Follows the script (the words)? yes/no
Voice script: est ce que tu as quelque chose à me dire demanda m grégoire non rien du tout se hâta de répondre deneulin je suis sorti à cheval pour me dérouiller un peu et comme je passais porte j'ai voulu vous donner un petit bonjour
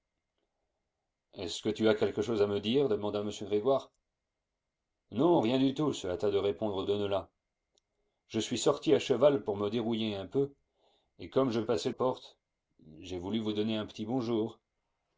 yes